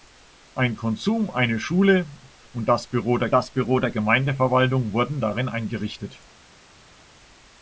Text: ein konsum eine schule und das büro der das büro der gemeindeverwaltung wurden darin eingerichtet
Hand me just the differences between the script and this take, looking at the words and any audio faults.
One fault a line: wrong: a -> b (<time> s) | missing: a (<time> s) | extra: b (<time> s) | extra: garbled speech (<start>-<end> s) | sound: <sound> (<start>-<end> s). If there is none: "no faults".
no faults